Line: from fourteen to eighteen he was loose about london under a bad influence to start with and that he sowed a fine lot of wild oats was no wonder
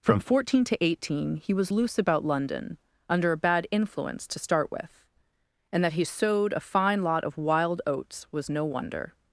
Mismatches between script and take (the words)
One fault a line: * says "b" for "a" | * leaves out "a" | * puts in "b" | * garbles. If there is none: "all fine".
all fine